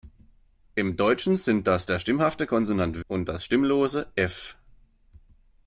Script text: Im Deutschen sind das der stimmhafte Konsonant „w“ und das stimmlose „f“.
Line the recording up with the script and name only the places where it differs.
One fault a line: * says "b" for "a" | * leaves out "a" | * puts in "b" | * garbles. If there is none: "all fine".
* leaves out "w"